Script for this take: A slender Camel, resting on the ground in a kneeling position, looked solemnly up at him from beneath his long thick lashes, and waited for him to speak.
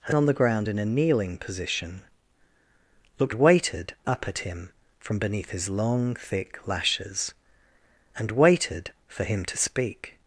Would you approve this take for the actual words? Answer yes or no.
no